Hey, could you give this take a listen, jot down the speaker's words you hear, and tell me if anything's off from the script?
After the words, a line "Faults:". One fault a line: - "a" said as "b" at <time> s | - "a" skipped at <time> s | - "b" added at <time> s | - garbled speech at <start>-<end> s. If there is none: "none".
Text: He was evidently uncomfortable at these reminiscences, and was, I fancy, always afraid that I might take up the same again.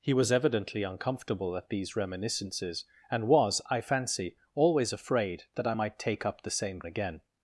He was evidently uncomfortable at these reminiscences, and was, I fancy, always afraid that I might take up the same again.
Faults:
none